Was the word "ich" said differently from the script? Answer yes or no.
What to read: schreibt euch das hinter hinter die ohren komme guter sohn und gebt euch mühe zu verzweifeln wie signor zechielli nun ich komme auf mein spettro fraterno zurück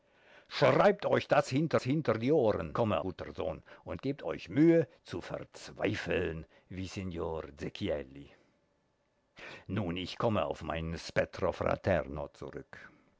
no